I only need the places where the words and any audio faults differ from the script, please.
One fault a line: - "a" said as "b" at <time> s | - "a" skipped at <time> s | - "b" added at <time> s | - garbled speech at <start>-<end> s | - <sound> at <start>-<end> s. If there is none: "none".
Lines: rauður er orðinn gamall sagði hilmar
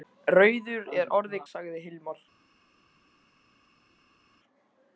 - "gamall" skipped at 1.4 s